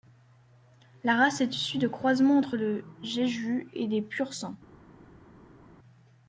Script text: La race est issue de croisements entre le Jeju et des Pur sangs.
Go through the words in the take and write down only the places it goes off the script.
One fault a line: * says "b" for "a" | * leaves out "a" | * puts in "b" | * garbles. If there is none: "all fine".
all fine